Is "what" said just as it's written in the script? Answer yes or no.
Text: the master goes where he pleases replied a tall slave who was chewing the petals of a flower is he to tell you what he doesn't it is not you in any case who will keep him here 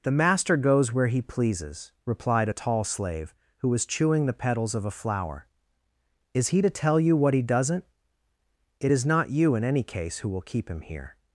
yes